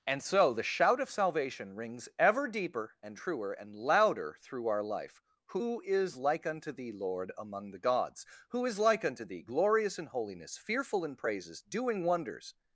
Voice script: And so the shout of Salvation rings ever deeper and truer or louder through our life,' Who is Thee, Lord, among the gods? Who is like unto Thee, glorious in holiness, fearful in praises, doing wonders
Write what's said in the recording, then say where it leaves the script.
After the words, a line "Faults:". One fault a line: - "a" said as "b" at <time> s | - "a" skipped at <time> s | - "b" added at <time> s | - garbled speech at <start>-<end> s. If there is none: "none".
And so the shout of Salvation rings ever deeper and truer and louder through our life,' Who is like unto Thee, Lord, among the gods? Who is like unto Thee, glorious in holiness, fearful in praises, doing wonders
Faults:
- "or" said as "and" at 3.5 s
- "like unto" added at 6.2 s